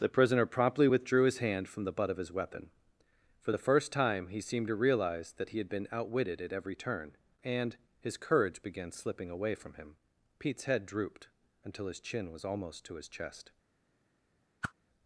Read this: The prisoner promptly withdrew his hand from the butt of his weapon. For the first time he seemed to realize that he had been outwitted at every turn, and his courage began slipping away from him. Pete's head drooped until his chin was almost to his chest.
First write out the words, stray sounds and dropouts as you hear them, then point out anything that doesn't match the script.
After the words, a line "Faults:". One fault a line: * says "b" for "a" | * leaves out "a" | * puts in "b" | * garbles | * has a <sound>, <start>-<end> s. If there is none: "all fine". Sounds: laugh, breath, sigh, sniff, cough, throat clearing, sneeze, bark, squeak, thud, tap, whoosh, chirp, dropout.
The prisoner promptly withdrew his hand from the butt of his weapon. For the first time he seemed to realize that he had been outwitted at every turn, and his courage began slipping away from him. Pete's head drooped until his chin was almost to his chest.
Faults:
* has a whoosh, 14.6-14.7 s